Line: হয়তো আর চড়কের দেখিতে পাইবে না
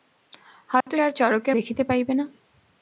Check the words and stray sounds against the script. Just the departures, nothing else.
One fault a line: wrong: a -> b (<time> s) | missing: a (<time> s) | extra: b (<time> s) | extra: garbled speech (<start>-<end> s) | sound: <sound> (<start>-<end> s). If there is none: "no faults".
sound: dropout (0.8-0.9 s)